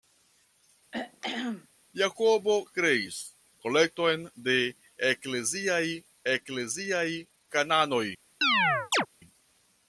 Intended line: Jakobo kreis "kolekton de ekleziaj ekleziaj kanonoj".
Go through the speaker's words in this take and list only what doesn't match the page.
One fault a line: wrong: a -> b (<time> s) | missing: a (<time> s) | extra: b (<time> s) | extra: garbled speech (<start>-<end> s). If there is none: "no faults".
no faults